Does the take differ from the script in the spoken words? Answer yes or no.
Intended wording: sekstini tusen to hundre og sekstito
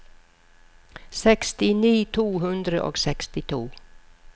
yes